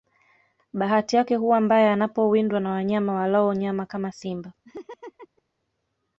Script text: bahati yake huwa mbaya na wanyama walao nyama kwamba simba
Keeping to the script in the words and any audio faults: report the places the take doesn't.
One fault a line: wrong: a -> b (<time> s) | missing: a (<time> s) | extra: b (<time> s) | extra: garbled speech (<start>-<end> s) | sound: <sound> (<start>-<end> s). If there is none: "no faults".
extra: anapowindwa (1.9 s)
wrong: kwamba -> kama (3.9 s)
sound: laugh (4.6-5.4 s)